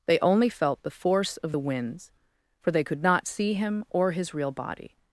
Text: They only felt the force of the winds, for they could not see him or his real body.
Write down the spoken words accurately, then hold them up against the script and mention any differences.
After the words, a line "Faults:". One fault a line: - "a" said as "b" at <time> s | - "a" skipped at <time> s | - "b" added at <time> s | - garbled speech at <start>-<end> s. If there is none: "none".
They only felt the force of the winds, for they could not see him or his real body.
Faults:
none